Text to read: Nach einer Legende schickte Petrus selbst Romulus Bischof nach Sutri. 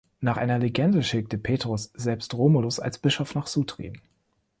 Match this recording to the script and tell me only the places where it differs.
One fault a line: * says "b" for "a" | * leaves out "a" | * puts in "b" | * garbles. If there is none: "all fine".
* puts in "als"